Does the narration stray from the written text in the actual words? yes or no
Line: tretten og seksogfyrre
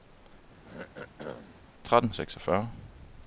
no